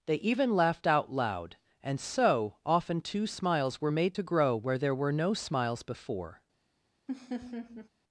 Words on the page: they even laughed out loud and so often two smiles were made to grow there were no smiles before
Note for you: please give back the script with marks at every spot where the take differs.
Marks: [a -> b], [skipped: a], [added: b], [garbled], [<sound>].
they even laughed out loud and so often two smiles were made to grow [added: where] there were no smiles before [laugh]